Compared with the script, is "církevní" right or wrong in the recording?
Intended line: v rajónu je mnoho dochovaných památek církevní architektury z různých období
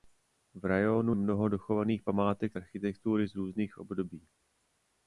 wrong